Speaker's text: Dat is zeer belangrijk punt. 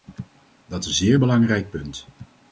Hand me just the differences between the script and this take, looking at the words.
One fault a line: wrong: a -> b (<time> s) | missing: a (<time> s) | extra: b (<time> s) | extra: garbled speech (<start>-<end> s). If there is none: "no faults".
no faults